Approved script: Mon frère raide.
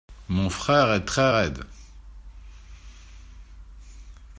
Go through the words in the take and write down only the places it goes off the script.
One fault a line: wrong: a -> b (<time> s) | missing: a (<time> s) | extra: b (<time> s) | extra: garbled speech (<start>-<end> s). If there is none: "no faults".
extra: est très (0.9 s)